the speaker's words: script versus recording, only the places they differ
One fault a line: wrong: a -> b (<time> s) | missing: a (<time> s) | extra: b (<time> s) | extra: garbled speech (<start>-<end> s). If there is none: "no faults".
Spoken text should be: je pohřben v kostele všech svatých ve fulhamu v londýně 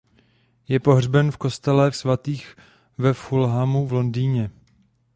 missing: všech (1.9 s)